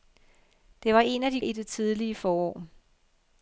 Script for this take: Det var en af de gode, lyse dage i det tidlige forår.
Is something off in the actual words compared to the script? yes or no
yes